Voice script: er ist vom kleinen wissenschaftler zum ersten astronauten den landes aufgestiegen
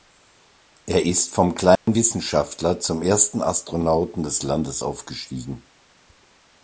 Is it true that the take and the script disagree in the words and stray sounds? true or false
true